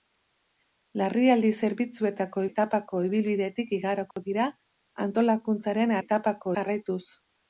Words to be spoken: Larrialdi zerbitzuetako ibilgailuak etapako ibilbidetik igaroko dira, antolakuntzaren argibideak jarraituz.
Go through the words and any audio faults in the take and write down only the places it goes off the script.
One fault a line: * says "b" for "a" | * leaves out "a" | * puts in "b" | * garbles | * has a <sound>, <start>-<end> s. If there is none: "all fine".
* leaves out "ibilgailuak"
* has a dropout, 4.1-4.2 s
* says "etapako" for "argibideak"